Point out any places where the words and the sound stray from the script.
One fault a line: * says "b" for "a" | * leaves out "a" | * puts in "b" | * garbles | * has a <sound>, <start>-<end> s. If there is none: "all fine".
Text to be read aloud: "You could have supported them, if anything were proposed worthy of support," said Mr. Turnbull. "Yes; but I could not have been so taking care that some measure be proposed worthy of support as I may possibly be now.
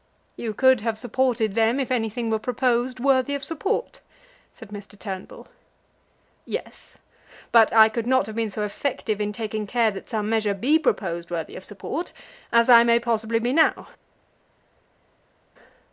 * puts in "effective in"